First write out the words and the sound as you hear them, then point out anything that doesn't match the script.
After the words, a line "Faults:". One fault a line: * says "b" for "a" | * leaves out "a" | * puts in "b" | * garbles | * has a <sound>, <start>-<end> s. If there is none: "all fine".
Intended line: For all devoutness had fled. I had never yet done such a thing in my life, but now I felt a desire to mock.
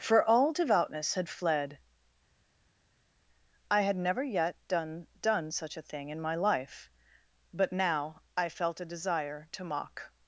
For all devoutness had fled. I had never yet done done such a thing in my life, but now I felt a desire to mock.
Faults:
* puts in "done"